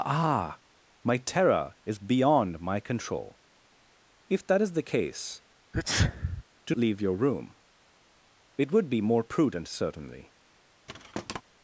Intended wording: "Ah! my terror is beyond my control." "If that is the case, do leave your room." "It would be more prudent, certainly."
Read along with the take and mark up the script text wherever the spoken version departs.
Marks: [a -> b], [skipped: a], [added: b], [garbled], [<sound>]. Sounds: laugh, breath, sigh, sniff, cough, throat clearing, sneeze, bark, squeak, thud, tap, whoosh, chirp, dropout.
"Ah! my terror is beyond my control." "If that is the case, [sneeze] do leave your room." "It would be more prudent, certainly." [thud]